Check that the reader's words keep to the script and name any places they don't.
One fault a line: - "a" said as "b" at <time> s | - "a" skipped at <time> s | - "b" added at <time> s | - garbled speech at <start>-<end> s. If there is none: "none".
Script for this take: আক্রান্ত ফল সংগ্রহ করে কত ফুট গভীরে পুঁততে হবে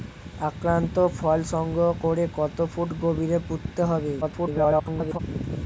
- garbled speech at 4.2-5.2 s